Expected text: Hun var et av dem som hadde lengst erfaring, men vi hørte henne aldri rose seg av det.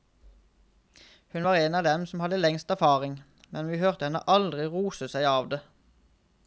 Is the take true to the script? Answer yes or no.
no